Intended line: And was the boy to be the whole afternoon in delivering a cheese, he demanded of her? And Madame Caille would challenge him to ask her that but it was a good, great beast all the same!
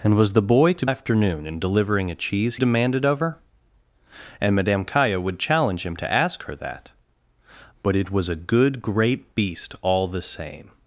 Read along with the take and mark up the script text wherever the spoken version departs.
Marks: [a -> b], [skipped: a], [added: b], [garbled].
And was the boy to [skipped: be the whole] afternoon in delivering a cheese, [skipped: he] demanded of her? And Madame Caille would challenge him to ask her that but it was a good, great beast all the same!